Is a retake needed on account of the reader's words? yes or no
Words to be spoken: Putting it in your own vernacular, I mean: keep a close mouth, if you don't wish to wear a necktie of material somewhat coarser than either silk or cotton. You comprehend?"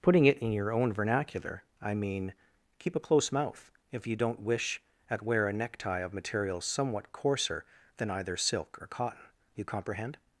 yes